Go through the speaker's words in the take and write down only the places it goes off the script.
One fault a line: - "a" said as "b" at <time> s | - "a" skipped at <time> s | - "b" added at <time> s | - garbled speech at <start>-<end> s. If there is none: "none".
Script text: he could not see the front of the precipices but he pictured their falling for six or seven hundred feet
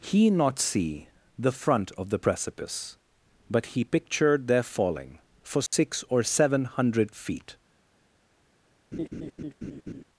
- "could" skipped at 0.3 s
- "precipices" said as "precipice" at 2.2 s